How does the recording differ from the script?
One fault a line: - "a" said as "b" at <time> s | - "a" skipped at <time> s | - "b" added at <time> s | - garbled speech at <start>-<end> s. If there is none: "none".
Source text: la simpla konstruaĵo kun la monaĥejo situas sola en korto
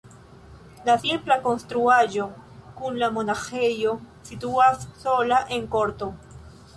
none